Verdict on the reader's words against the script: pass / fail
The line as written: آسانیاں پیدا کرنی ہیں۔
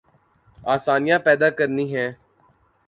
pass